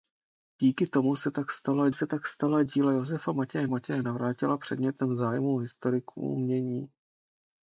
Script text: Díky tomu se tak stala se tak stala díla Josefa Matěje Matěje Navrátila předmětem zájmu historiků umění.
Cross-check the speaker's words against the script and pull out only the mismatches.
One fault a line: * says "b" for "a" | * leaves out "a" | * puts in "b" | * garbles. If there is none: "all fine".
all fine